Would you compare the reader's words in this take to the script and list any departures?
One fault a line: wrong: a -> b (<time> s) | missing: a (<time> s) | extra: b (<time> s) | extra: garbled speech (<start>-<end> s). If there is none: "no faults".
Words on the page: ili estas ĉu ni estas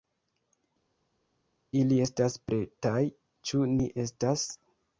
extra: pretaj (2.5 s)